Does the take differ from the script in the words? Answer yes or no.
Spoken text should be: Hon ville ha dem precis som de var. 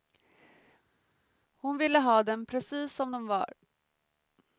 no